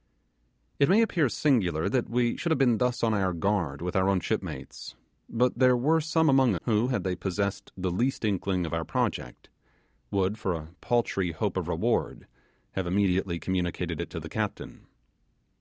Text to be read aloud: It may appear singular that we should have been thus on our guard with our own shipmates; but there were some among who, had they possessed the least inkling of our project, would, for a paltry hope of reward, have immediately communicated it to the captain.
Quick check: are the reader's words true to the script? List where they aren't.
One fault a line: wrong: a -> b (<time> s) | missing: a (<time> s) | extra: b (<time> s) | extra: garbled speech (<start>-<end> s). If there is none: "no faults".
no faults